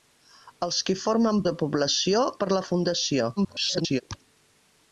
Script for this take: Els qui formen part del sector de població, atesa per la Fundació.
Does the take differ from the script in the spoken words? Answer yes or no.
yes